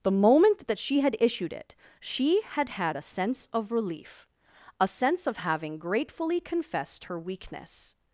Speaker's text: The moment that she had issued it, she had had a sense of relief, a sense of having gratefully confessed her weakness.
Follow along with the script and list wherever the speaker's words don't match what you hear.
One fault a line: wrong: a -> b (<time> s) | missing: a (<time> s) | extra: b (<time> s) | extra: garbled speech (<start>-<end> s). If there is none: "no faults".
no faults